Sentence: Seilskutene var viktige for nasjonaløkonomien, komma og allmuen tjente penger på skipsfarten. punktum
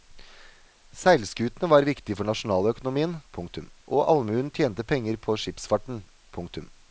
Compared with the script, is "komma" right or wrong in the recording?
wrong